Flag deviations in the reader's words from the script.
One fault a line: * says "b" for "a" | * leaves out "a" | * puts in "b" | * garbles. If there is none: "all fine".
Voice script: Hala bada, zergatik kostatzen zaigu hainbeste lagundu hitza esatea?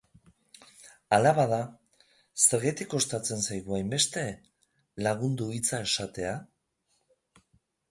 all fine